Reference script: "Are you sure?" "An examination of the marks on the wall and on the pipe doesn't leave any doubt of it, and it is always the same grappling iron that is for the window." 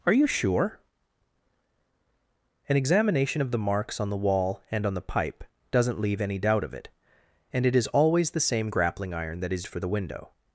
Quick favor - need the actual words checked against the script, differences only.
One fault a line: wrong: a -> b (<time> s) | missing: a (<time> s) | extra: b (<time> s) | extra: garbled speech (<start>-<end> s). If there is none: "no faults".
no faults